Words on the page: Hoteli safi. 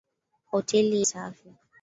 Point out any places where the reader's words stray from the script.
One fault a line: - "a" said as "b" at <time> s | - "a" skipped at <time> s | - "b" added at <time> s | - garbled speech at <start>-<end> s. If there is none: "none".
none